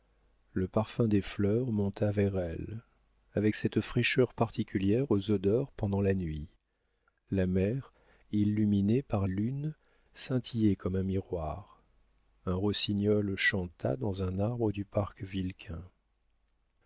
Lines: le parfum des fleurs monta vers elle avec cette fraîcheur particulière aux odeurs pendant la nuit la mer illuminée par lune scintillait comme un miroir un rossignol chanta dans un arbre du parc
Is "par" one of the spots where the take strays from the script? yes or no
no